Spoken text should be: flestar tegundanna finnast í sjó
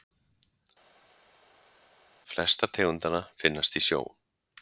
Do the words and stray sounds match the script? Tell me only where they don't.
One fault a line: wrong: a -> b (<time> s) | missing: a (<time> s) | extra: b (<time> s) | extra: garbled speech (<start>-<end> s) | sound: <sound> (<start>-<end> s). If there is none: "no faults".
no faults